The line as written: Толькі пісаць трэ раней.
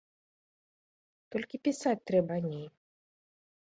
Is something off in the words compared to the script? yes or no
no